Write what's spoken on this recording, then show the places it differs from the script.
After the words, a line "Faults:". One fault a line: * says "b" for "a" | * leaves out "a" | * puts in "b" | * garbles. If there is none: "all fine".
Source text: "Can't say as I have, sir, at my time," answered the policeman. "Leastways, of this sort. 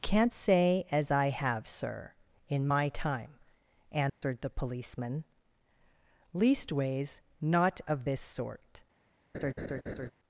"Can't say as I have, sir, in my time," answered the policeman. "Leastways, not of this sort.
Faults:
* says "in" for "at"
* puts in "not"